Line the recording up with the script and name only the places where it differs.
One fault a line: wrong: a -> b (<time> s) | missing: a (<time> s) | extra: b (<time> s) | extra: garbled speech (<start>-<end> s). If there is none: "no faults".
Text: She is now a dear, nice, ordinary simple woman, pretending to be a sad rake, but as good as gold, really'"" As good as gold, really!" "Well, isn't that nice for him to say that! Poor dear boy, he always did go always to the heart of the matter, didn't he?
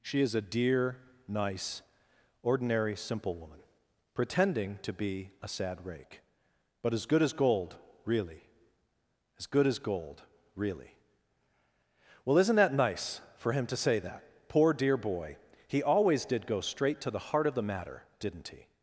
missing: now (0.3 s)
wrong: always -> straight (16.6 s)